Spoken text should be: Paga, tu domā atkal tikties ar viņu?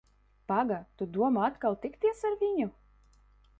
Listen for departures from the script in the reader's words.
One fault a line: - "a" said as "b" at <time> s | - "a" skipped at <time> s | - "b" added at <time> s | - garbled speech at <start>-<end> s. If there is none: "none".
none